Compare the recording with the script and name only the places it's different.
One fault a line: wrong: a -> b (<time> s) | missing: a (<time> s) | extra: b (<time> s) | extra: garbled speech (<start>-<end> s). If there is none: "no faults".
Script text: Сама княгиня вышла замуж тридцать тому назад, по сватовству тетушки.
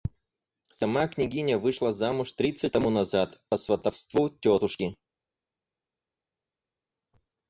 no faults